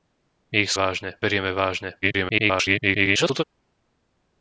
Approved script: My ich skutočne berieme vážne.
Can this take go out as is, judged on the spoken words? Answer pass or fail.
fail